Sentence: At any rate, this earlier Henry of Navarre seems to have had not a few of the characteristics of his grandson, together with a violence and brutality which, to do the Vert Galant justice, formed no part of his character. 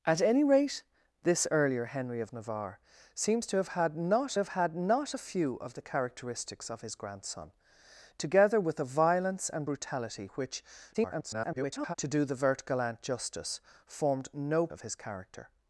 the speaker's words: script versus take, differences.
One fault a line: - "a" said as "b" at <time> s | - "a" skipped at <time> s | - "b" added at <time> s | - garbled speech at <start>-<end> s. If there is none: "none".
- "have had not" added at 4.4 s
- garbled speech at 10.9-11.9 s
- "part" skipped at 14.7 s